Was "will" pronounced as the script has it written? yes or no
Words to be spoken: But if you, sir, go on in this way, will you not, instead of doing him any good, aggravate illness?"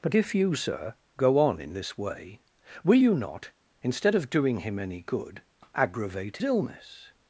yes